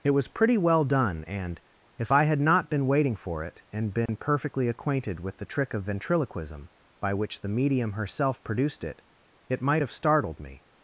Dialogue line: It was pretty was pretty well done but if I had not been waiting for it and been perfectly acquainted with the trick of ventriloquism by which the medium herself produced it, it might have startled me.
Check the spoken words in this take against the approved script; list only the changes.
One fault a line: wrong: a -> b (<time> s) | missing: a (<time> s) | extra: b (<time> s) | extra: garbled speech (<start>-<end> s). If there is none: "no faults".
missing: was pretty (0.6 s)
wrong: but -> and (1.2 s)